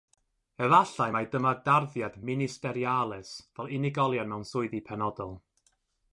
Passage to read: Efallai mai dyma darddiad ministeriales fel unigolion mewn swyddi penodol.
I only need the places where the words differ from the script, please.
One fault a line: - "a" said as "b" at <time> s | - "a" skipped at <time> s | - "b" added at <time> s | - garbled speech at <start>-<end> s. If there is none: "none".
none